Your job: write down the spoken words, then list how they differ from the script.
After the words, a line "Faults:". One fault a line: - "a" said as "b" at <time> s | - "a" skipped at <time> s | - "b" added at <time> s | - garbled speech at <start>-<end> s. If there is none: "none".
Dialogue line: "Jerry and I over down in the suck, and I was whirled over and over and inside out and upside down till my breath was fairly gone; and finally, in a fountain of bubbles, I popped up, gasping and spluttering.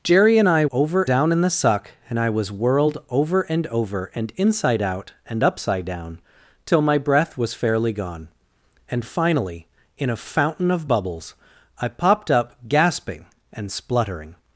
"Jerry and I over down in the suck, and I was whirled over and over and inside out and upside down till my breath was fairly gone; and finally, in a fountain of bubbles, I popped up, gasping and spluttering.
Faults:
none